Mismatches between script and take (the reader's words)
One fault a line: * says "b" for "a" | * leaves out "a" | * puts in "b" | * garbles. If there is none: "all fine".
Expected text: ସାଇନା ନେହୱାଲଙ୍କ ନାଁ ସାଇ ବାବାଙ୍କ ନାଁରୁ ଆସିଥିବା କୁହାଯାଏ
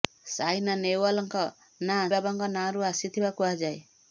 * leaves out "ସାଇ"